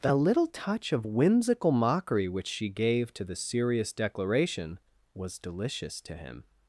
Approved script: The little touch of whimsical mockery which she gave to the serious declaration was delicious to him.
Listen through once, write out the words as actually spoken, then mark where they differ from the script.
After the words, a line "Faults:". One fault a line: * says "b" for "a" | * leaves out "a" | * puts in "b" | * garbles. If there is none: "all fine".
The little touch of whimsical mockery which she gave to the serious declaration was delicious to him.
Faults:
all fine